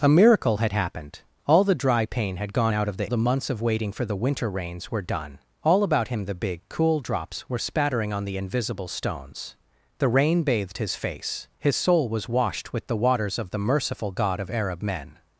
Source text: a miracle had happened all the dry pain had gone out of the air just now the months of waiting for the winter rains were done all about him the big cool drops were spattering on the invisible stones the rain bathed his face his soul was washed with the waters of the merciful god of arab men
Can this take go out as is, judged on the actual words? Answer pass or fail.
fail